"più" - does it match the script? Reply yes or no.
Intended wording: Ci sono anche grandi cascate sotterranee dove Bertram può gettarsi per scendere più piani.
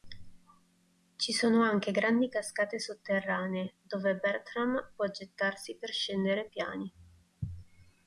no